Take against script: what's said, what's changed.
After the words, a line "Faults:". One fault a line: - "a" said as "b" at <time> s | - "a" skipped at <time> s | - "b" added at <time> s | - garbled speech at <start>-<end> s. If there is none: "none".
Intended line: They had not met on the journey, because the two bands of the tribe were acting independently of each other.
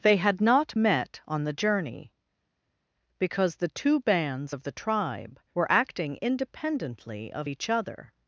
They had not met on the journey, because the two bands of the tribe were acting independently of each other.
Faults:
none